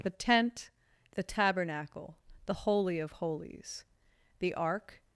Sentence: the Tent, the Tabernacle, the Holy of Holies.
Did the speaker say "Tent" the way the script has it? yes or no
yes